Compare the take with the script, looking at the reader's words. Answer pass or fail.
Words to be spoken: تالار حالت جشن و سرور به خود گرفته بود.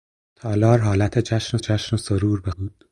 fail